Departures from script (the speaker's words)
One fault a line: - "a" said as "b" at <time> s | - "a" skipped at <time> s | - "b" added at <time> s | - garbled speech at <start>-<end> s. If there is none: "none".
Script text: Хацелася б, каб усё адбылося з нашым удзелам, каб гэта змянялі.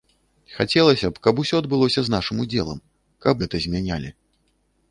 none